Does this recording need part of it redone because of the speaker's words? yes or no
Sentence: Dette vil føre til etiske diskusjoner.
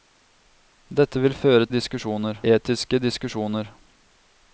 yes